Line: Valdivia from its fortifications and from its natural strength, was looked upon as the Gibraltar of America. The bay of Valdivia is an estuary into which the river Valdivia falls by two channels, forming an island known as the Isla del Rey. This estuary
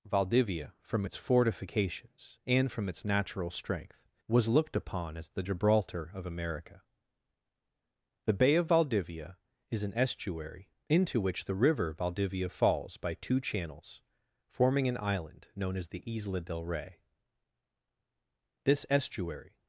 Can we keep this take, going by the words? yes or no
yes